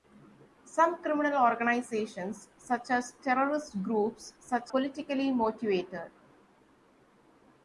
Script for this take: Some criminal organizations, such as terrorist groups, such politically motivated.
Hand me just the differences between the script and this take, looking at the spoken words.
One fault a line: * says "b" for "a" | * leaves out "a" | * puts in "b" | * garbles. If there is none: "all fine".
all fine